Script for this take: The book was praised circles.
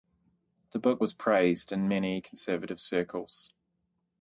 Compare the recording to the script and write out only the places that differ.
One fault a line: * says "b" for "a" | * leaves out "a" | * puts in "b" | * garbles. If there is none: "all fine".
* puts in "in many conservative"